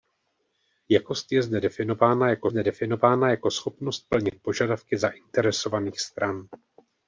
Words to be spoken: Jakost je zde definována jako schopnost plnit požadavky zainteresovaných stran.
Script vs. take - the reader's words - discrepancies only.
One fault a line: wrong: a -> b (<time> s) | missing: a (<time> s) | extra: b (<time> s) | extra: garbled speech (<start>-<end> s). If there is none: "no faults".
extra: zde definována jako (2.5 s)